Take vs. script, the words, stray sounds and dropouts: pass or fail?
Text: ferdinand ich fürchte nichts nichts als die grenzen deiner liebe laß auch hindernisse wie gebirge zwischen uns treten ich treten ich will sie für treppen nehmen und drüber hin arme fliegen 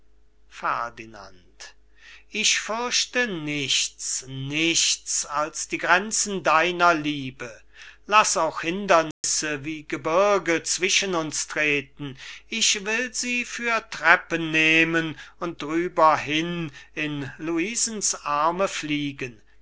fail